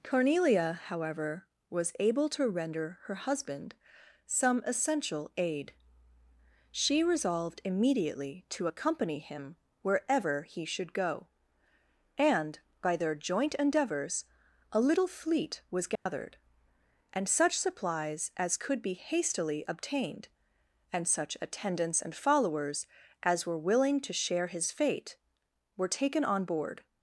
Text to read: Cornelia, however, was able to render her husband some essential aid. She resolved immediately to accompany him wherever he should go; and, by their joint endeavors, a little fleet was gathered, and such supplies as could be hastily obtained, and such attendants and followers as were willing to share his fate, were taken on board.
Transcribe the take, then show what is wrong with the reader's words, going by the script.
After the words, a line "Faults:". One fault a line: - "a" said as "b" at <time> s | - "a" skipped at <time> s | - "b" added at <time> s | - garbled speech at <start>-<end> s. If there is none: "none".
Cornelia, however, was able to render her husband some essential aid. She resolved immediately to accompany him wherever he should go; and, by their joint endeavors, a little fleet was gathered, and such supplies as could be hastily obtained, and such attendants and followers as were willing to share his fate, were taken on board.
Faults:
none